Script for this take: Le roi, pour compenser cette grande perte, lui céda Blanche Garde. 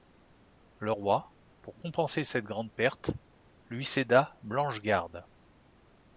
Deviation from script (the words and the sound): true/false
false